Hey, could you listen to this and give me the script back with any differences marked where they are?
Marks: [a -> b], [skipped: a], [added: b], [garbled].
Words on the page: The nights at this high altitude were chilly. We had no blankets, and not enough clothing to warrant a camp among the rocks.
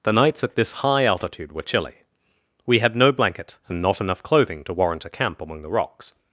The nights at this high altitude were chilly. We had no [blankets, -> blanket] and not enough clothing to warrant a camp among the rocks.